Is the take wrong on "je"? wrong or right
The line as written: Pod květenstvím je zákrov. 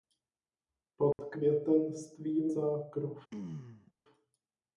wrong